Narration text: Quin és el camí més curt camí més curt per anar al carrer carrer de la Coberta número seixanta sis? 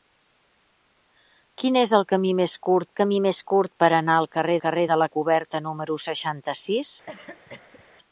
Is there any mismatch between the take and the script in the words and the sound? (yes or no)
yes